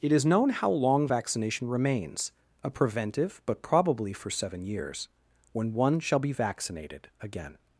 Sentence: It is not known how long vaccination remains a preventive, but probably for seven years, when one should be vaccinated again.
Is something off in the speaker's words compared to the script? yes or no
yes